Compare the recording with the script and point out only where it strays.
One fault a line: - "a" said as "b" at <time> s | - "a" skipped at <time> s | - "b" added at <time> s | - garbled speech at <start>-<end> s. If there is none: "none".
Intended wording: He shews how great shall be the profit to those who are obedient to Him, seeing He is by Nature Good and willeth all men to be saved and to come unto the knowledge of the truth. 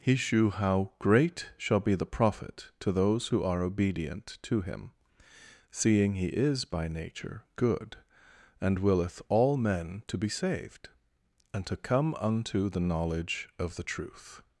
- "shews" said as "shew" at 0.1 s